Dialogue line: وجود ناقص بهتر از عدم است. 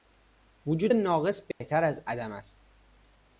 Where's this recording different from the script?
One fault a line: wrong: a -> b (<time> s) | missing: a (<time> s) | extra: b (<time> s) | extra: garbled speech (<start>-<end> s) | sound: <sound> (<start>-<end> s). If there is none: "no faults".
sound: dropout (1.5-1.6 s)